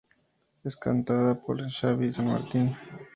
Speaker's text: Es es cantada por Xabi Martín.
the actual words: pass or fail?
fail